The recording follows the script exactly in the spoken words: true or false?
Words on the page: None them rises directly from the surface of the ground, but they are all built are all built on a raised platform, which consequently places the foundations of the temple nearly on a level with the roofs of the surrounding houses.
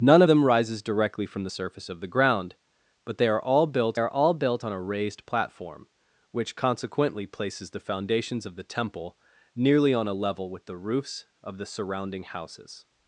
true